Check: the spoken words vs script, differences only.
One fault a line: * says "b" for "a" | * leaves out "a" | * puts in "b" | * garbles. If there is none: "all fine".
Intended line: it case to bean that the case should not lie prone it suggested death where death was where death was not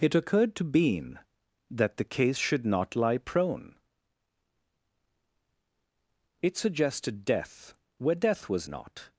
* says "occurred" for "case"
* leaves out "where death was"